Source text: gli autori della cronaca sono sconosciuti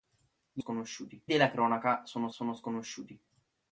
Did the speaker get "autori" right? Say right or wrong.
wrong